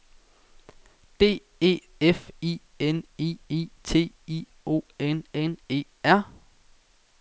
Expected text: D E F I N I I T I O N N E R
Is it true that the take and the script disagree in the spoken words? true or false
false